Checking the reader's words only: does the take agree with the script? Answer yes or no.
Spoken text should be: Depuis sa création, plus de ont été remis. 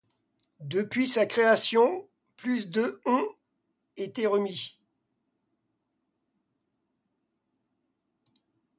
yes